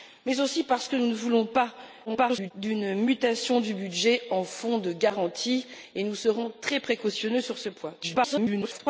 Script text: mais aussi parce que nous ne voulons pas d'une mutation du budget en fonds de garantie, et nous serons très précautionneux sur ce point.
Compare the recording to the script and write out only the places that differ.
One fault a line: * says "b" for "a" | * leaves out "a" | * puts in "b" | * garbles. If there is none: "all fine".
* garbles
* garbles